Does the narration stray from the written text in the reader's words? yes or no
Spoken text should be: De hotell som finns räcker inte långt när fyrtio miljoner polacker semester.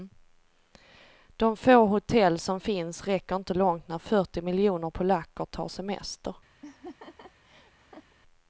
yes